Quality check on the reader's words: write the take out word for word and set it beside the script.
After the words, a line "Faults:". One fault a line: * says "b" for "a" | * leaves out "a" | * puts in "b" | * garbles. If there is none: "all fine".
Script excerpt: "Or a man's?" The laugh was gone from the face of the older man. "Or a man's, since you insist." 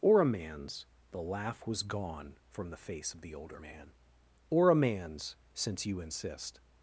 "Or a man's?" The laugh was gone from the face of the older man. "Or a man's, since you insist."
Faults:
all fine